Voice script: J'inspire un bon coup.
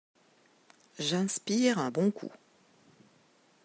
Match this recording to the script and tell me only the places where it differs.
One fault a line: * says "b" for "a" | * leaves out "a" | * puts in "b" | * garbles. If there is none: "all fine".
all fine